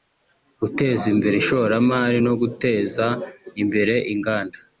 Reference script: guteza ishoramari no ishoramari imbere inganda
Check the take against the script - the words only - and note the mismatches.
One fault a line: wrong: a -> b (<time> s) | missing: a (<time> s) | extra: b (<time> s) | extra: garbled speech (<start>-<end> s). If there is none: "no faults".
extra: imbere (1.1 s)
wrong: ishoramari -> guteza (2.4 s)